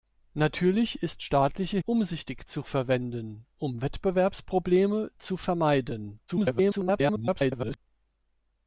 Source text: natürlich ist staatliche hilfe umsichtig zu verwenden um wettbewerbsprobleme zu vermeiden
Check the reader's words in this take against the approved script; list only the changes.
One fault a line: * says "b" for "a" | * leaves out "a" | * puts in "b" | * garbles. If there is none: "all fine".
* leaves out "hilfe"
* garbles